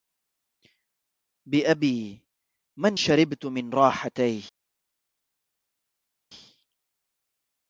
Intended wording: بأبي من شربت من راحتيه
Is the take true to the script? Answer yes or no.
yes